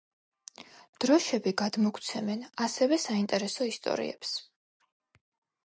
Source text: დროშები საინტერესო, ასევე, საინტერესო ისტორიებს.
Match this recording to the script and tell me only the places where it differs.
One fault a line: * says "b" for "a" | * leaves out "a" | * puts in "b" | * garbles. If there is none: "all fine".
* says "გადმოგვცემენ" for "საინტერესო"